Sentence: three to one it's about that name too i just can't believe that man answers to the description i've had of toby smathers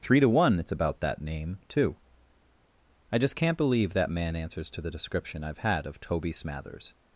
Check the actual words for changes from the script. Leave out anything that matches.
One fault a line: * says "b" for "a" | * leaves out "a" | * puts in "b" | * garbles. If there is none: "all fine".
all fine